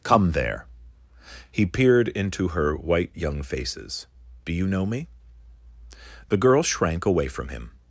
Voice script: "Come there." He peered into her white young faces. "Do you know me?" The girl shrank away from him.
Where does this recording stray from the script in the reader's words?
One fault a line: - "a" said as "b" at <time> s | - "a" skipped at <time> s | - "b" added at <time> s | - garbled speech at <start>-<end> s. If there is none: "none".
none